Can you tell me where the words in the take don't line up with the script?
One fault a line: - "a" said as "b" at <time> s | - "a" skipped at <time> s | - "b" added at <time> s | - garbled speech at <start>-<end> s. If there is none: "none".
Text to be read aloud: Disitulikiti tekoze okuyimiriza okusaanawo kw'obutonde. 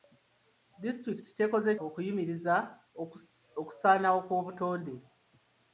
none